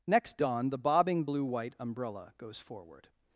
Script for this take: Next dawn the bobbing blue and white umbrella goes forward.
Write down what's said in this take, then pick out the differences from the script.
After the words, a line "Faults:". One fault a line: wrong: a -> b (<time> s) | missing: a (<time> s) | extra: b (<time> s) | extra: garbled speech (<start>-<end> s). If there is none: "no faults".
Next dawn the bobbing blue white umbrella goes forward.
Faults:
missing: and (1.4 s)